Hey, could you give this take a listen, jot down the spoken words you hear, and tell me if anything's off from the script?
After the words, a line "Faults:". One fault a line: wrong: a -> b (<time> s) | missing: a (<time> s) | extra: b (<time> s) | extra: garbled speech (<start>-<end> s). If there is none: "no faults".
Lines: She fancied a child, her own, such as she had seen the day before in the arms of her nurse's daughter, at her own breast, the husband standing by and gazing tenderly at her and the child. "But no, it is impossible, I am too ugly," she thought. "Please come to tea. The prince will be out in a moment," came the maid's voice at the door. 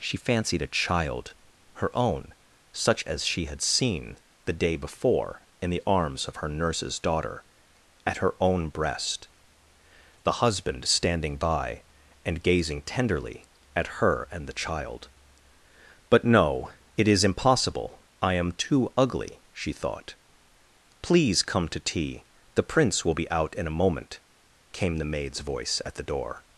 She fancied a child, her own, such as she had seen the day before in the arms of her nurse's daughter, at her own breast, the husband standing by and gazing tenderly at her and the child. "But no, it is impossible, I am too ugly," she thought. "Please come to tea. The prince will be out in a moment," came the maid's voice at the door.
Faults:
no faults